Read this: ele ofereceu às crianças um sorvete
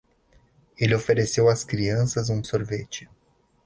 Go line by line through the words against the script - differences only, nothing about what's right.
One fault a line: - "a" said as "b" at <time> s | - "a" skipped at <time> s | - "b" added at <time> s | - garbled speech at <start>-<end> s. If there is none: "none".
none